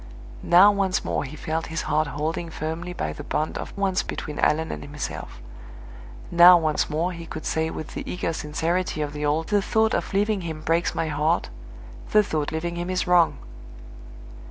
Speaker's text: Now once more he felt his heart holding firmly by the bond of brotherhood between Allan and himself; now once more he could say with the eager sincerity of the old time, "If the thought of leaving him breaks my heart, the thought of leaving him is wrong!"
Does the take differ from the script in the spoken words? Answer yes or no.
yes